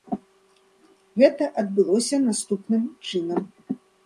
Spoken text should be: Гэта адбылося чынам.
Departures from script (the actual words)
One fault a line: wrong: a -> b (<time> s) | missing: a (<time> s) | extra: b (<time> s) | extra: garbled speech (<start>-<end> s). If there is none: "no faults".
extra: наступным (2.3 s)